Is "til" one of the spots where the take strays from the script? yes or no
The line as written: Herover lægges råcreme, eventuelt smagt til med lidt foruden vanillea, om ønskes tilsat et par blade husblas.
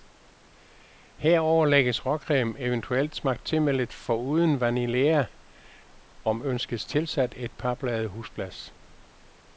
no